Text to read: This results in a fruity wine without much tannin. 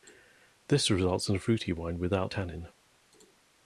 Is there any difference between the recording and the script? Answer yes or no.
yes